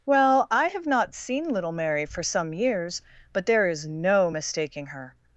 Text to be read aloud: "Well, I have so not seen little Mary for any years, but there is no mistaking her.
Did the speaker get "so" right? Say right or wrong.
wrong